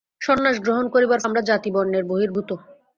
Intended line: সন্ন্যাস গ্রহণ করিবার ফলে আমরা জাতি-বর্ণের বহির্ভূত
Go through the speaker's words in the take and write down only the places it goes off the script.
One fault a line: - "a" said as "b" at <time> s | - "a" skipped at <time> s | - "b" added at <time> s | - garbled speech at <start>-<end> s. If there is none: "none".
- "ফলে" skipped at 1.2 s